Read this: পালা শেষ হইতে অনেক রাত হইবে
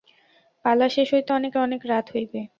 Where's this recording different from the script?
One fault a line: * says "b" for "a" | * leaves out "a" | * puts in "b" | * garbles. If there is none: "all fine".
* puts in "অনেক"